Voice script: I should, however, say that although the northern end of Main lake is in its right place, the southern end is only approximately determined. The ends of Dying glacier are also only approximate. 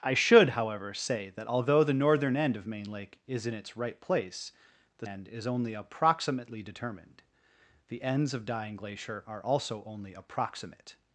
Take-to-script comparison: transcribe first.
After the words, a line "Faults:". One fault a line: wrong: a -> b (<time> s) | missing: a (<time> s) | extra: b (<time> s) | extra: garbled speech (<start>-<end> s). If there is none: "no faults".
I should, however, say that although the northern end of Main lake is in its right place, the end is only approximately determined. The ends of Dying glacier are also only approximate.
Faults:
missing: southern (5.1 s)